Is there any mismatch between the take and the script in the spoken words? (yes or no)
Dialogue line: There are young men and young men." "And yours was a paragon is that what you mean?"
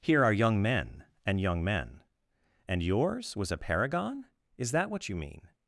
yes